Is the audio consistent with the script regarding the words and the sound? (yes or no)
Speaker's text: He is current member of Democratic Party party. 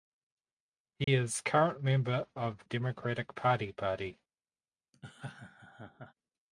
no